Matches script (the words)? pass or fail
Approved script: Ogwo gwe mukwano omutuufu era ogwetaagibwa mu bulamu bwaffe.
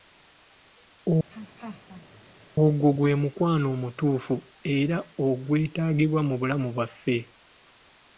pass